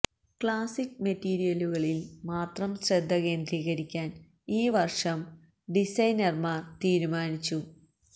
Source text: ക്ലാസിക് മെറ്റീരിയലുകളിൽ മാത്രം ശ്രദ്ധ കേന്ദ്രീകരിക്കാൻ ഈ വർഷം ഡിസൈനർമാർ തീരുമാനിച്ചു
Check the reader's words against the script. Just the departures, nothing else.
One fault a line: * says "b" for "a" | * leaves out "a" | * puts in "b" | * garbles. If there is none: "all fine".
all fine